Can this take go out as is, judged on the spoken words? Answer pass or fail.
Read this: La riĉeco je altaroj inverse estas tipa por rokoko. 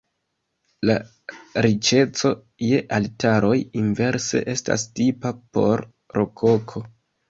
pass